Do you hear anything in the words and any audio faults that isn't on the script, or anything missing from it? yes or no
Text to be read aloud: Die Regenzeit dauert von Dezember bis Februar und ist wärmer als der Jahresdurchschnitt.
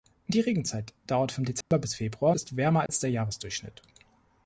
yes